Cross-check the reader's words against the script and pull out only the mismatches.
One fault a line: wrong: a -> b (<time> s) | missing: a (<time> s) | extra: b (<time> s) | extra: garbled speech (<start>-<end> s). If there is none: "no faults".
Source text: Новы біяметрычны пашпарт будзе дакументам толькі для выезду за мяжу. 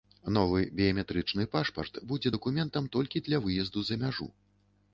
no faults